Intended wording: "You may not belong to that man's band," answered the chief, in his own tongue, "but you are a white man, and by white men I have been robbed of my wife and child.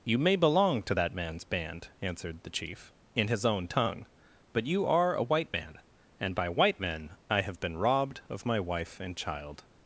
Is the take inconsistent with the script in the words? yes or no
yes